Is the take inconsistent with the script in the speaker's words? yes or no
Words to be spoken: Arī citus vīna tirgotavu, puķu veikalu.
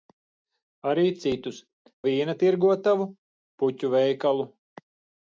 no